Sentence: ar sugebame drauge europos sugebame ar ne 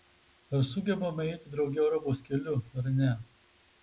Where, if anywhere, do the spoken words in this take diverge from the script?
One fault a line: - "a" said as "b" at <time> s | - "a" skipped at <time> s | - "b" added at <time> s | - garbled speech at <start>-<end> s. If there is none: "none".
- "eiti" added at 1.3 s
- "sugebame" said as "keliu" at 2.3 s